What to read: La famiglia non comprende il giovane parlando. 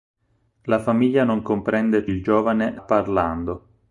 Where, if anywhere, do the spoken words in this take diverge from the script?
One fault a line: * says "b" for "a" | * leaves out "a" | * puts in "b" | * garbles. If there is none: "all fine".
all fine